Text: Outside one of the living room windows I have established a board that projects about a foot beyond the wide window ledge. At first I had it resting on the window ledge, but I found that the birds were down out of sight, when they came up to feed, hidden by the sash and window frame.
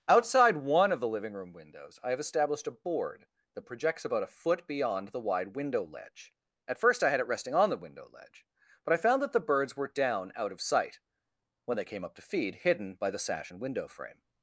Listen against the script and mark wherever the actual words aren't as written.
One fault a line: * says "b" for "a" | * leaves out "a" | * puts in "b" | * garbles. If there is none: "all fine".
all fine